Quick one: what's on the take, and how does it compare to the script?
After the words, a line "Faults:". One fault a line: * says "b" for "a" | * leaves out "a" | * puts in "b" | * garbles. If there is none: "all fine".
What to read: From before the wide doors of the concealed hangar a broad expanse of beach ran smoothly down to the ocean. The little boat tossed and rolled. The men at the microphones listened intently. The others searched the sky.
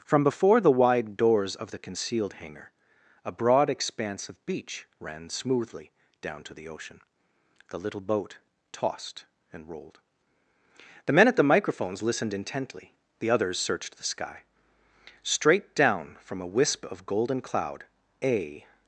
From before the wide doors of the concealed hangar a broad expanse of beach ran smoothly down to the ocean. The little boat tossed and rolled. The men at the microphones listened intently. The others searched the sky. Straight down from a wisp of golden cloud a
Faults:
* puts in "Straight down from a wisp of golden cloud a"